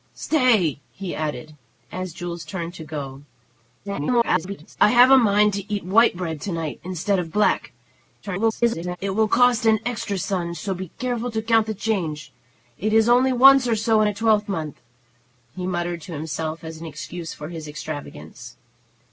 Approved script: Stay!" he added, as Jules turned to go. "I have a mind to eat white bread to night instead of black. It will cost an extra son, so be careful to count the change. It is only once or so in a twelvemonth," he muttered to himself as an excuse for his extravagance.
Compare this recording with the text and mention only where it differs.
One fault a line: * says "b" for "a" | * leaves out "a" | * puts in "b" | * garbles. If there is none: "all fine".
* garbles
* garbles